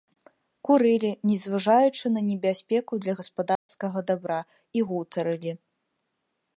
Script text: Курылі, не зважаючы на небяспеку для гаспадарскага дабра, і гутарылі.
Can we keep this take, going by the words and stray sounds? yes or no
no